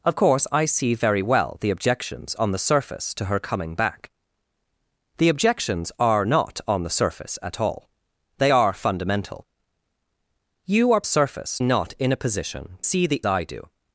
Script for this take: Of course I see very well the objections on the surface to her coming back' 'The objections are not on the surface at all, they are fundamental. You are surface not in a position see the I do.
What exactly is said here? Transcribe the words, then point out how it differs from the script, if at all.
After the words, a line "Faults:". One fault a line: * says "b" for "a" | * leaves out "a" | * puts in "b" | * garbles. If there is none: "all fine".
Of course I see very well the objections on the surface to her coming back' 'The objections are not on the surface at all, they are fundamental. You are surface not in a position see the I do.
Faults:
all fine